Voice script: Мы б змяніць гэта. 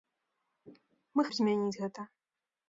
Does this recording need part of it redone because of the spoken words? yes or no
no